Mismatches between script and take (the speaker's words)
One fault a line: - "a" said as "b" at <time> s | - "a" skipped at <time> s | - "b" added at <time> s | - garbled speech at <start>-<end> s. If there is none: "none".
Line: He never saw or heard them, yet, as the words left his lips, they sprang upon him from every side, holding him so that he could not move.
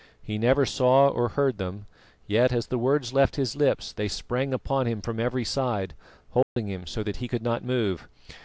none